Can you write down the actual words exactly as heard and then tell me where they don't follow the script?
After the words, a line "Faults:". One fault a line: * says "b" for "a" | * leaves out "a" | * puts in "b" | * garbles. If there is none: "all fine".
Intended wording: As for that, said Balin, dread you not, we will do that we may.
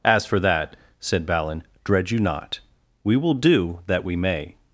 As for that, said Balin, dread you not, we will do that we may.
Faults:
all fine